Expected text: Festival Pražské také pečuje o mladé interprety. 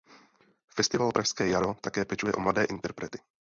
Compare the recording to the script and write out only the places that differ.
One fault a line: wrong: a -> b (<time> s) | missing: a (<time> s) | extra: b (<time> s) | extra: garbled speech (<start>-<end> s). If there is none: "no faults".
extra: jaro (1.5 s)